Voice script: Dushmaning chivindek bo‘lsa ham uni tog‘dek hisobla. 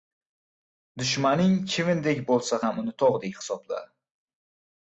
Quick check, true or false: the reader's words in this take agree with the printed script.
true